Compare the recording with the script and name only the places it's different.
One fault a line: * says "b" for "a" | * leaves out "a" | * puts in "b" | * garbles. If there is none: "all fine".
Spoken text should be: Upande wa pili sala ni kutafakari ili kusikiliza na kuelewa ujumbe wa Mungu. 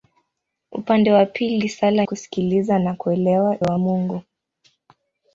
* leaves out "ni kutafakari ili"
* leaves out "ujumbe"